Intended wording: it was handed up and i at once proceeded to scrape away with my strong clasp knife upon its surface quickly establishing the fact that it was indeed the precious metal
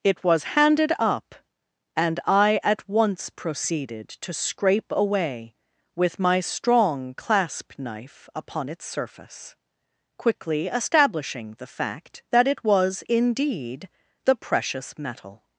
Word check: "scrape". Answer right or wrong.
right